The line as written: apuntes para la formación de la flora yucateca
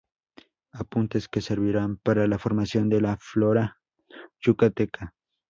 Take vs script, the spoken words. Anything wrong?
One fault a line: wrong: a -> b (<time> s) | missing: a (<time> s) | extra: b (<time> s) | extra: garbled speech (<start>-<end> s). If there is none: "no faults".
extra: que servirán (1.3 s)